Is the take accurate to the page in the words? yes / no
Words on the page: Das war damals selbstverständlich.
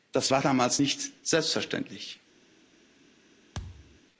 no